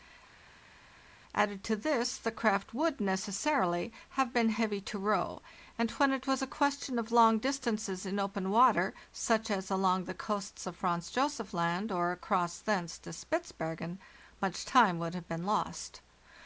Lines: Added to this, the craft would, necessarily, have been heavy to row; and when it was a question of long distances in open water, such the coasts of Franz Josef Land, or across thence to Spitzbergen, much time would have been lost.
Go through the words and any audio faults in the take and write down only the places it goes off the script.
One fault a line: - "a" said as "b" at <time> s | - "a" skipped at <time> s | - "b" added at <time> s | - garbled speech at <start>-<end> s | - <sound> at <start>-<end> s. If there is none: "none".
- "as along" added at 9.5 s